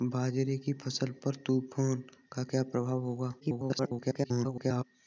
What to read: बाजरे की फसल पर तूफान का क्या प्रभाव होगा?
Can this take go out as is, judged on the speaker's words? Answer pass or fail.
fail